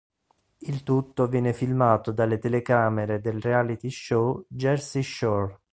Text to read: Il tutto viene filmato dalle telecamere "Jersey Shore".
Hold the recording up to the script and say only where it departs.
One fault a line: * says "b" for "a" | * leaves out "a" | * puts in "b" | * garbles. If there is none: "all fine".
* puts in "del reality show"